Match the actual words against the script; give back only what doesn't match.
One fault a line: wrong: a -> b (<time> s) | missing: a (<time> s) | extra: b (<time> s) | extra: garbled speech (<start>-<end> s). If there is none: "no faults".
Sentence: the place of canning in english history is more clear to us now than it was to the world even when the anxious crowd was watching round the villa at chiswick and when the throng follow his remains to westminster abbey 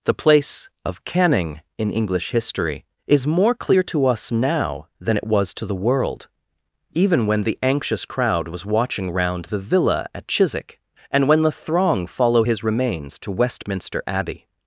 no faults